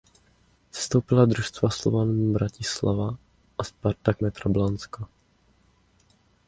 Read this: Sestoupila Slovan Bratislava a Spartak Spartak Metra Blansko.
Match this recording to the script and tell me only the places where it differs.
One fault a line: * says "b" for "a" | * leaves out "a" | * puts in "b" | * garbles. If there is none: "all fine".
* puts in "družstva"
* leaves out "Spartak"